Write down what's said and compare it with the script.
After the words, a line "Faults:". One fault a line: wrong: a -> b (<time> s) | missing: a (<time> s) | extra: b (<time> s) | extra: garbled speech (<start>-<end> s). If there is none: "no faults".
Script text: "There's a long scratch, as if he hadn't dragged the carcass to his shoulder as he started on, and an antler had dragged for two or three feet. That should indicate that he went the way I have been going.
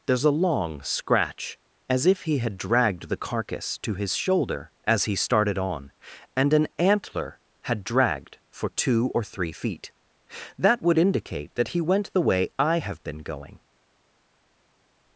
"There's a long scratch, as if he had dragged the carcass to his shoulder as he started on, and an antler had dragged for two or three feet. That would indicate that he went the way I have been going.
Faults:
wrong: hadn't -> had (2.4 s)
wrong: should -> would (10.8 s)